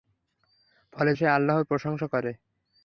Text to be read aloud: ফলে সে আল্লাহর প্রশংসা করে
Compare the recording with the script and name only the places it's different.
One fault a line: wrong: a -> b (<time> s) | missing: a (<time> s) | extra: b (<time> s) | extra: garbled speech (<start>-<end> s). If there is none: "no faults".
no faults